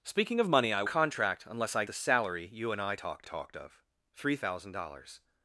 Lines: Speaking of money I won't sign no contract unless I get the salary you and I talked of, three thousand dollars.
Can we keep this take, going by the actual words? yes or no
no